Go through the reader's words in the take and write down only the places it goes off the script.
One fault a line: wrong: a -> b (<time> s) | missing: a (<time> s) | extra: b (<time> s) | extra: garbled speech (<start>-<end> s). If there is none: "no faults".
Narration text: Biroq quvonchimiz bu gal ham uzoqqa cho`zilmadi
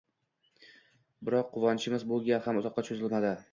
no faults